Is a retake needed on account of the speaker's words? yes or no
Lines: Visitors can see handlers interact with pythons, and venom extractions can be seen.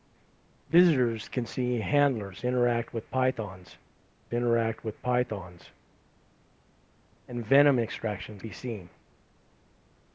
yes